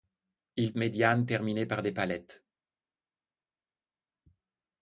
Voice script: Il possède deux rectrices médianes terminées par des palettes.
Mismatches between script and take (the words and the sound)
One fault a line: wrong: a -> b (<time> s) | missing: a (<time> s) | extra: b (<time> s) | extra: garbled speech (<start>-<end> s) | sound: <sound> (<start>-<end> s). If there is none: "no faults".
missing: possède deux rectrices (0.7 s)